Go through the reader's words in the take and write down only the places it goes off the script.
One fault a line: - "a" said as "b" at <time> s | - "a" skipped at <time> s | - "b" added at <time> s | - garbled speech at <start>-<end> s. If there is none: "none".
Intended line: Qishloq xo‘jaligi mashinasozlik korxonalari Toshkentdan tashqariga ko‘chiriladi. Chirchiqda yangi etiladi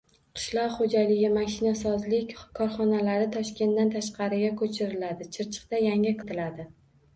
none